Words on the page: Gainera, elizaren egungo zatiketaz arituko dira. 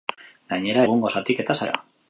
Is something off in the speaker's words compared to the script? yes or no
yes